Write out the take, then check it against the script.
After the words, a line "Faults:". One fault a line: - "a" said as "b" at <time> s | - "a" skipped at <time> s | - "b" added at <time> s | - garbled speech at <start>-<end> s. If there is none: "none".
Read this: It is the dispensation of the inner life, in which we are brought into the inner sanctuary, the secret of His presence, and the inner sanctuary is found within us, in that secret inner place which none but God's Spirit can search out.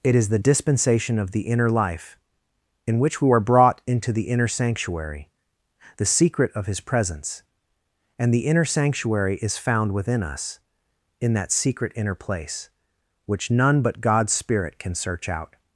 It is the dispensation of the inner life, in which we are brought into the inner sanctuary, the secret of His presence, and the inner sanctuary is found within us, in that secret inner place which none but God's Spirit can search out.
Faults:
none